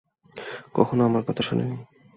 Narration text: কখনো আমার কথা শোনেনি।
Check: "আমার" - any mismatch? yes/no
no